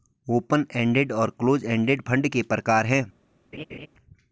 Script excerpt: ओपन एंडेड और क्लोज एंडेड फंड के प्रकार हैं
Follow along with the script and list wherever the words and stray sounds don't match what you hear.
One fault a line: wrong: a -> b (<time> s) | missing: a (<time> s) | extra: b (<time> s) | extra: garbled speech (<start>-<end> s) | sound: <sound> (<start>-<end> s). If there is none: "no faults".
sound: laugh (3.5-3.9 s)